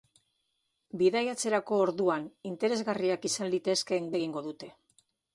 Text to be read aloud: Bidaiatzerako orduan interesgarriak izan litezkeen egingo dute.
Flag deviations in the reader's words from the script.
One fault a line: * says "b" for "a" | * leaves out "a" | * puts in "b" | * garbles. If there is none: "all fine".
all fine